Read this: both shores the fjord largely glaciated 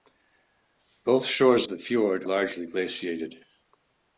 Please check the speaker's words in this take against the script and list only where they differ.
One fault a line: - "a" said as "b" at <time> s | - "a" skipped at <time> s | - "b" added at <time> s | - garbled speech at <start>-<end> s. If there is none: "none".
none